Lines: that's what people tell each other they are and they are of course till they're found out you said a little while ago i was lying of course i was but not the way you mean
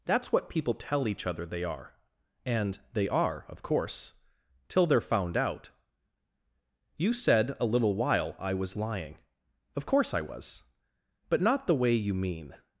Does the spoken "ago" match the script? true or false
false